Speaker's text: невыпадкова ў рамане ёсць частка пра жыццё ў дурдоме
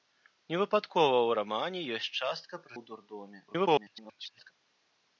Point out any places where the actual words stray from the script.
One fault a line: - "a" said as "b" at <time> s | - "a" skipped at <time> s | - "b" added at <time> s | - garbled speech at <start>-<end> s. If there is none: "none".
- "жыццё" skipped at 2.7 s
- garbled speech at 3.5-4.5 s